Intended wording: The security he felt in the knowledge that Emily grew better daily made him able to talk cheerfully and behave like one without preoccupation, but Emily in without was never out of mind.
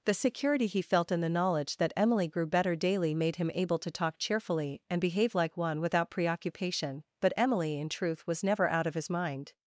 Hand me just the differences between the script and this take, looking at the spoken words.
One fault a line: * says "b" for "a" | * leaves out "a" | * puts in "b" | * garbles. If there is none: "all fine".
* says "truth" for "without"
* puts in "his"